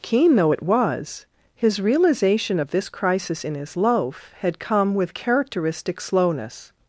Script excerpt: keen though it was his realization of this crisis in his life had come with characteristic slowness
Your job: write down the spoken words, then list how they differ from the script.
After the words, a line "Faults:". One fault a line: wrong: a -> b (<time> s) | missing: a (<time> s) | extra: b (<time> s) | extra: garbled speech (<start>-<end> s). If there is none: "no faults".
keen though it was his realization of this crisis in his loaf had come with characteristic slowness
Faults:
wrong: life -> loaf (3.7 s)